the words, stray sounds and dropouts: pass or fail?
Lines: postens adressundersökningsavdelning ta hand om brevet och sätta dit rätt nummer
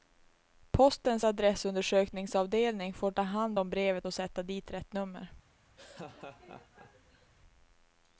fail